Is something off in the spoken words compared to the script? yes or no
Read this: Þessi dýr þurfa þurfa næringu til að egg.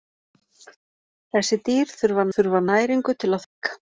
no